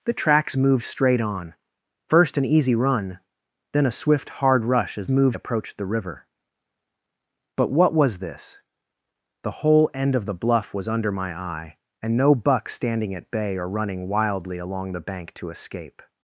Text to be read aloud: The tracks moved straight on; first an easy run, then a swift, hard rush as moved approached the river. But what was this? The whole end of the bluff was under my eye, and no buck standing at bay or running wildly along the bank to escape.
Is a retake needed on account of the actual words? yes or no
no